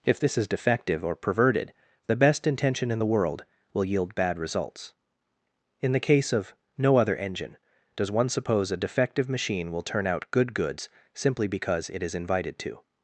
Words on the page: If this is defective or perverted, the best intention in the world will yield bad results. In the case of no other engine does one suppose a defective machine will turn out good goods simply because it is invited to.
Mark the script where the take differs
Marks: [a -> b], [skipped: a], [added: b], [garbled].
If this is defective or perverted, the best intention in the world will yield bad results. In the case of no other engine does one suppose a defective machine will turn out good goods simply because it is invited to.